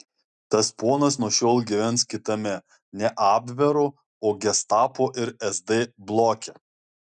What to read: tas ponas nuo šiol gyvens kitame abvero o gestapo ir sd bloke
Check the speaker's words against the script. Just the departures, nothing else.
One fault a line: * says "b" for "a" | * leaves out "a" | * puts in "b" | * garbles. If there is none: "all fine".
* puts in "ne"